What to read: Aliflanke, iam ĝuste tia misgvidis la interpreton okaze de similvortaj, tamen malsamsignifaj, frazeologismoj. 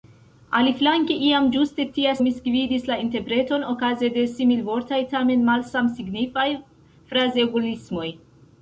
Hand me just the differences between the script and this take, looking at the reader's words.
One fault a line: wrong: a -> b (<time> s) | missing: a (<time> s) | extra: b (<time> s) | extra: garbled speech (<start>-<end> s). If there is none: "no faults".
no faults